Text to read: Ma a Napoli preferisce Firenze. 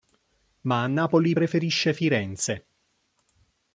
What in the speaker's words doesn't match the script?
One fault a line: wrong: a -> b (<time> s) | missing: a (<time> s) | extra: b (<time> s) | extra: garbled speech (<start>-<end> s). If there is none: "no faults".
no faults